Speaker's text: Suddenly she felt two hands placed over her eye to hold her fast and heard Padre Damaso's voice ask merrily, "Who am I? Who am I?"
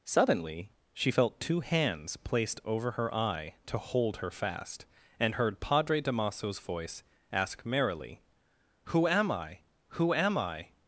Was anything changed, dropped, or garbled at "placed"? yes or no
no